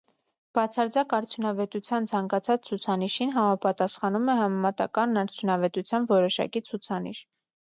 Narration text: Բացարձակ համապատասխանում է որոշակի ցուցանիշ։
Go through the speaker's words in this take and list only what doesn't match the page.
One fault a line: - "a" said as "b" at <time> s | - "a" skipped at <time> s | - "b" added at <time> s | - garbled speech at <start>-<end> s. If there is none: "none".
- "արդյունավետության ցանկացած ցուցանիշին" added at 1.2 s
- "համեմատական արդյունավետության" added at 4.4 s